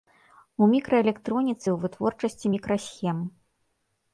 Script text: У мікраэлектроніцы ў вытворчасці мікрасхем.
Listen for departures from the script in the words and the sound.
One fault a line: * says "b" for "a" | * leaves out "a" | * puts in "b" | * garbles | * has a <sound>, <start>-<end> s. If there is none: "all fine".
all fine